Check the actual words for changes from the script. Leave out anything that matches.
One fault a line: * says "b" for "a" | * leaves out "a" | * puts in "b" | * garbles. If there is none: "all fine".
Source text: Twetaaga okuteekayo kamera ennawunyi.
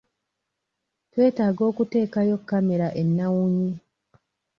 all fine